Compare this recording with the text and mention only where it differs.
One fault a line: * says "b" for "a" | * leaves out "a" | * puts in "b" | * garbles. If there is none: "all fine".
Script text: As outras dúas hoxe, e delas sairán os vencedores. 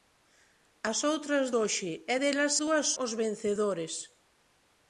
* leaves out "dúas"
* says "dúas" for "sairán"